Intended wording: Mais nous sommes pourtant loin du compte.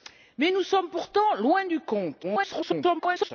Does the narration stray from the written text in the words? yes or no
yes